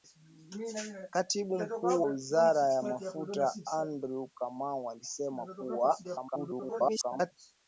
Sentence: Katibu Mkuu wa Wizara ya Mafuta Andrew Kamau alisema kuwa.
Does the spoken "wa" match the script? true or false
false